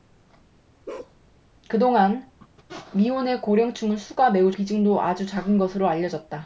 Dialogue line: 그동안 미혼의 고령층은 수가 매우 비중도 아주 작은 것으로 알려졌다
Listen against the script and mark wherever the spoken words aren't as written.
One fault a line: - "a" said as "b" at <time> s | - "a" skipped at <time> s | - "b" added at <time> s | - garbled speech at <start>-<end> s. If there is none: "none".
none